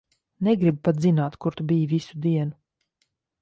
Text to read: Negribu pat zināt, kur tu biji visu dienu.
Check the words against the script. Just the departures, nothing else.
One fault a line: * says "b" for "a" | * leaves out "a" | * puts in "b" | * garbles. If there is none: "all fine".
all fine